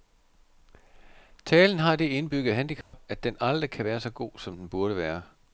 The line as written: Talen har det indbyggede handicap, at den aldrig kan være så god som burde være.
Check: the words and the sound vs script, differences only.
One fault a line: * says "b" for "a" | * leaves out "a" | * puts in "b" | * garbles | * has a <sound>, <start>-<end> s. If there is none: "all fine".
* has a dropout, 2.8-2.9 s
* puts in "den"